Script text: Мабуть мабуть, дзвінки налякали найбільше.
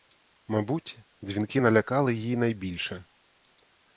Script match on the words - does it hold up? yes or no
no